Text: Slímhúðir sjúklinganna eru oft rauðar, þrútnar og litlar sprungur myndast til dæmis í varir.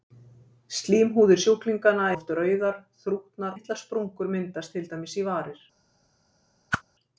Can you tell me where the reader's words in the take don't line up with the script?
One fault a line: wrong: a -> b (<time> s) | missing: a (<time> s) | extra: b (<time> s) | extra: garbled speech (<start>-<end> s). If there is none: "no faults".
missing: eru (2.1 s)
missing: og (3.6 s)